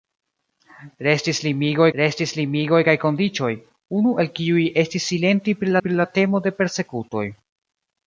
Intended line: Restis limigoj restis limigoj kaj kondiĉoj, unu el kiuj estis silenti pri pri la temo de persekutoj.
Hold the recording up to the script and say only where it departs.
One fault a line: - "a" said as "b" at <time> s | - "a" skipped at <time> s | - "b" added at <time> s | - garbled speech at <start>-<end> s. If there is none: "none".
none